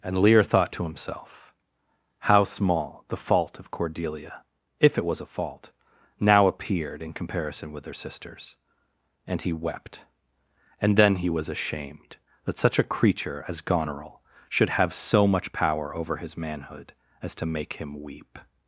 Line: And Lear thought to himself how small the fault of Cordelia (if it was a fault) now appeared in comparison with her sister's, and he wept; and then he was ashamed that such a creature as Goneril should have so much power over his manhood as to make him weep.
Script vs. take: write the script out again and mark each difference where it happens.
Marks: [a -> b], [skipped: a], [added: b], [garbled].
And Lear thought to himself how small the fault of Cordelia (if it was a fault) now appeared in comparison with her sister's, and he wept; and then he was ashamed that such a creature as Goneril should have so much power over his manhood as to make him weep.